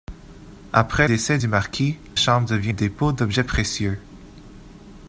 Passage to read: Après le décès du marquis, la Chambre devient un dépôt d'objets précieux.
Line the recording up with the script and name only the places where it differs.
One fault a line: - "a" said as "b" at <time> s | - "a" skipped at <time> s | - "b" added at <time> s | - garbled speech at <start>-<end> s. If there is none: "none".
- "le" skipped at 1.1 s
- "la" skipped at 2.0 s
- "un" skipped at 2.7 s